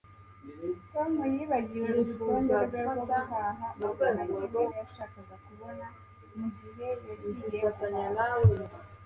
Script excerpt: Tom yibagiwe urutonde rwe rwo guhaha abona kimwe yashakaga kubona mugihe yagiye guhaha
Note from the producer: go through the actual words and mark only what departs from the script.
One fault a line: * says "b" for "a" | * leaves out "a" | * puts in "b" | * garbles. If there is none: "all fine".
all fine